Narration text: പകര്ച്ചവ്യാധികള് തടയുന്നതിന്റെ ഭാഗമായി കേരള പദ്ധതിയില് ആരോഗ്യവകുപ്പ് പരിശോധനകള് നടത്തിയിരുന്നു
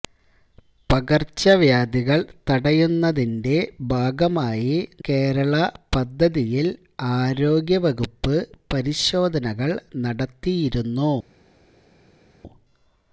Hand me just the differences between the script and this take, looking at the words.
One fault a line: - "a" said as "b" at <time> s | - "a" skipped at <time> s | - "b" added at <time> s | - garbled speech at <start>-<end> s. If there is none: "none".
none